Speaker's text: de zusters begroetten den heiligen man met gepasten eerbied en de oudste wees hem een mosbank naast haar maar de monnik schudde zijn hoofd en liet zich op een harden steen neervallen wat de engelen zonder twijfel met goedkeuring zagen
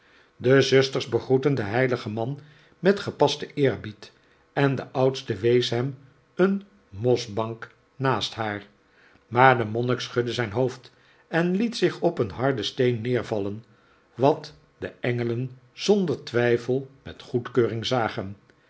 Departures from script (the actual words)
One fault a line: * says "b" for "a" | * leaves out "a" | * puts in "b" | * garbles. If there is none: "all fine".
all fine